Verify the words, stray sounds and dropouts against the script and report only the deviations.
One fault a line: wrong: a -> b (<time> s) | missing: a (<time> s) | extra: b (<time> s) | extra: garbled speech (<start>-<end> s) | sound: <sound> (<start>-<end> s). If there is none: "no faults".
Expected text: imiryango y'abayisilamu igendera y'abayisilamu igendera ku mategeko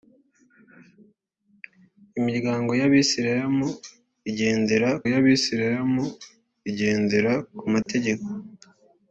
sound: dropout (7.8-7.9 s)